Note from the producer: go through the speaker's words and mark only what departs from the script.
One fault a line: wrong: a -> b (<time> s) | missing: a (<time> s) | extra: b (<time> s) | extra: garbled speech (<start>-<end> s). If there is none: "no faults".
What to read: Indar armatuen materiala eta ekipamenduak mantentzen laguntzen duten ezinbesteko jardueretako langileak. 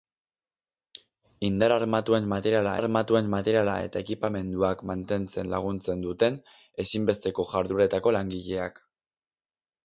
extra: armatuen materiala (2.7 s)